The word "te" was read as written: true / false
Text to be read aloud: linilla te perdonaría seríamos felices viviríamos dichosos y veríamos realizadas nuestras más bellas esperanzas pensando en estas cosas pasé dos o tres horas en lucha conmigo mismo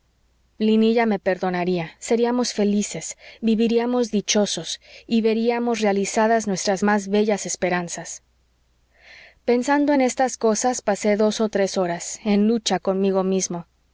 false